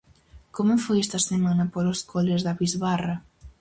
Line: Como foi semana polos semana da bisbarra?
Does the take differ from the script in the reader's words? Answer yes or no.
yes